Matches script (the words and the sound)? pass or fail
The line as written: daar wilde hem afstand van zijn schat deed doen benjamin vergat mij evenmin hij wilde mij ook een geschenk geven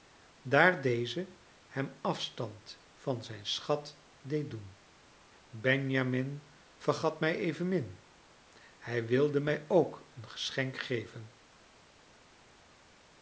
fail